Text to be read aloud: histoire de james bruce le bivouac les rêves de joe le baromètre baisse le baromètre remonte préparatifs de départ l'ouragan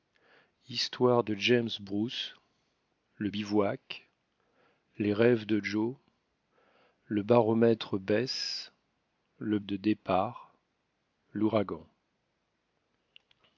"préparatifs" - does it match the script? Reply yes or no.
no